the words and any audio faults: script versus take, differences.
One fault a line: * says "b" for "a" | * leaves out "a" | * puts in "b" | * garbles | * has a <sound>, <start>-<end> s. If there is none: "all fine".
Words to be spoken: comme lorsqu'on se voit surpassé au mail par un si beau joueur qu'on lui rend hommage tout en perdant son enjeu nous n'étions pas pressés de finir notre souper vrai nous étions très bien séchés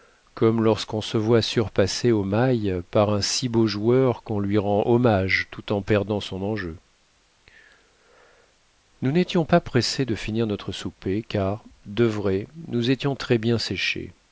* puts in "car de"